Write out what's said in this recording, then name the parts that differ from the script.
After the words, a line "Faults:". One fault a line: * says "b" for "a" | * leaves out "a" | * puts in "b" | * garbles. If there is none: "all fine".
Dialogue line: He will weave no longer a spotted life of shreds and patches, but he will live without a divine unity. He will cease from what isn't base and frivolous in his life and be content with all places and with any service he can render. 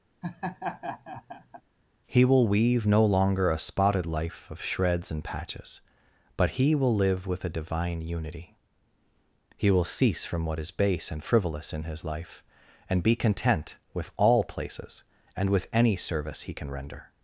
He will weave no longer a spotted life of shreds and patches, but he will live with a divine unity. He will cease from what is base and frivolous in his life and be content with all places and with any service he can render.
Faults:
* says "with" for "without"
* says "is" for "isn't"